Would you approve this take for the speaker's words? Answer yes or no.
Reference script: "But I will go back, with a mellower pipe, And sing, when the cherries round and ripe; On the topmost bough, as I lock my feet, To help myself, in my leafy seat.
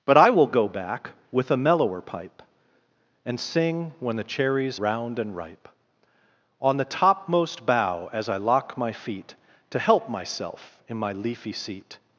yes